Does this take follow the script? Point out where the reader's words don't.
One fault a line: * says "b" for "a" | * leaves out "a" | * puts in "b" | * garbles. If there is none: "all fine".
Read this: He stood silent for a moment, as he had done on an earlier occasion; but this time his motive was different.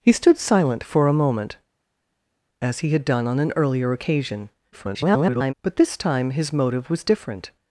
* garbles